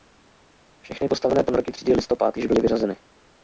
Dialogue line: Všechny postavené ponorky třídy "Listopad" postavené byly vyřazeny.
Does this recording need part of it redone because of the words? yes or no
yes